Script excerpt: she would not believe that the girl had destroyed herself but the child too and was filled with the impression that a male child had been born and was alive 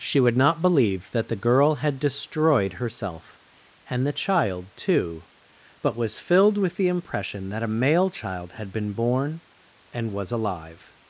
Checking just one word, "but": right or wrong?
wrong